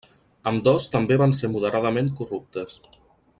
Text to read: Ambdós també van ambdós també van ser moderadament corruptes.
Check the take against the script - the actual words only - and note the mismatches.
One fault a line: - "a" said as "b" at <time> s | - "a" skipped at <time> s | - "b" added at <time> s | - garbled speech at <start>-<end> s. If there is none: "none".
- "ambdós també van" skipped at 1.3 s